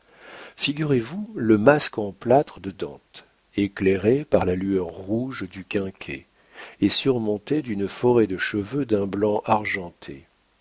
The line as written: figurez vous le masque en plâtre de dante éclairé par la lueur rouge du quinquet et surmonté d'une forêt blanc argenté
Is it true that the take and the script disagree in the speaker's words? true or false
true